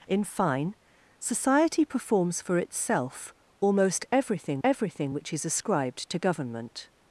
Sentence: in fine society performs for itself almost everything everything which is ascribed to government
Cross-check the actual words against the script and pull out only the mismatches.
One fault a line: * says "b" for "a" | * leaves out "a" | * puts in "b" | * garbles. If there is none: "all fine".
all fine